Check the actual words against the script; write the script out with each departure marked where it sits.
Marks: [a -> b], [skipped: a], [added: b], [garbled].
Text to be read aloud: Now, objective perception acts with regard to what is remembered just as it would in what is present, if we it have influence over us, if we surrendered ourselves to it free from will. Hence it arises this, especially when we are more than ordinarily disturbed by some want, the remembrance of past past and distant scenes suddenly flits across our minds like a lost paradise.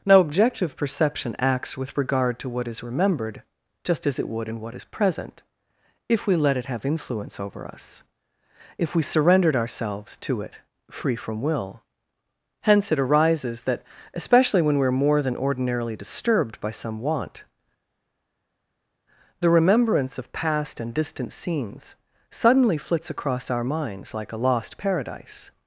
Now, objective perception acts with regard to what is remembered just as it would in what is present, if we [added: let] it have influence over us, if we surrendered ourselves to it free from will. Hence it arises [this, -> that] especially when we are more than ordinarily disturbed by some want, the remembrance of past [skipped: past] and distant scenes suddenly flits across our minds like a lost paradise.